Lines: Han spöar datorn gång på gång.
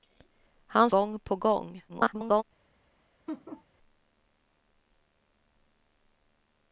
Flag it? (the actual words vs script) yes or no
yes